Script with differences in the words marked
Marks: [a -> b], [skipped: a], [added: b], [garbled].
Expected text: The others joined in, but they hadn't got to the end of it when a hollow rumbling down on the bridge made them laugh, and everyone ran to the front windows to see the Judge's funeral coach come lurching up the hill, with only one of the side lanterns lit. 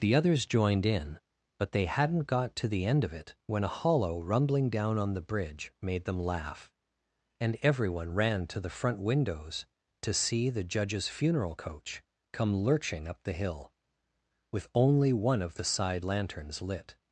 The others joined in, but they hadn't got to the end of it when a hollow rumbling down on the bridge made them laugh, and everyone ran to the front windows to see the Judge's funeral coach come lurching up the hill, with only one of the side lanterns lit.